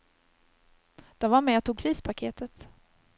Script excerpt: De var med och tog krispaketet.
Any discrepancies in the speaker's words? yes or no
no